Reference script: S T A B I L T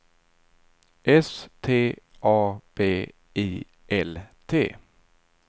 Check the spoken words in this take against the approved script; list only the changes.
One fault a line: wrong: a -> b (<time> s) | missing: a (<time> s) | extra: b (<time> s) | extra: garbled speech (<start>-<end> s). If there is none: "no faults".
no faults